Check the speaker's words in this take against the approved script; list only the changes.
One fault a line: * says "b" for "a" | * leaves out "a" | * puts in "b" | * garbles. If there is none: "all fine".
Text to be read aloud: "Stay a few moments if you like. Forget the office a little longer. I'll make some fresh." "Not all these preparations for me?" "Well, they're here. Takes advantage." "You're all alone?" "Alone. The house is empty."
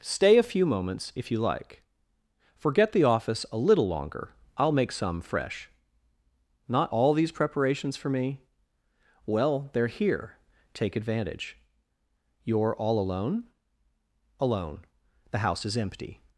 * says "Take" for "Takes"